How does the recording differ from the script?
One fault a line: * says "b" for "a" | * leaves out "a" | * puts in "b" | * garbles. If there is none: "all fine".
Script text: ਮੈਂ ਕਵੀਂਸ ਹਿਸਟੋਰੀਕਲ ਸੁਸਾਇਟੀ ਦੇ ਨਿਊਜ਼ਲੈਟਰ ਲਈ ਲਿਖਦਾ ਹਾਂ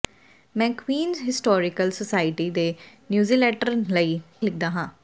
all fine